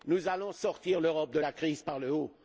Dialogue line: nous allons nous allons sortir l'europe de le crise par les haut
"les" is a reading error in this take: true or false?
true